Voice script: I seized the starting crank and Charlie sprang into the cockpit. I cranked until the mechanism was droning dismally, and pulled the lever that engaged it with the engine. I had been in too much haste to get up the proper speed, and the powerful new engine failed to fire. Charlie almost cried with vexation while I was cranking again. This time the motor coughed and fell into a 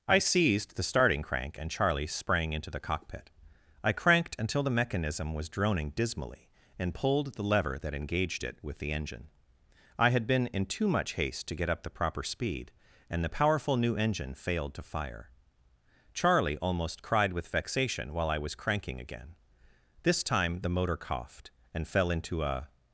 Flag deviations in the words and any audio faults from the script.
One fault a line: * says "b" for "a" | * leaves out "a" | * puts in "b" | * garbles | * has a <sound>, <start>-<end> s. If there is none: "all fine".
all fine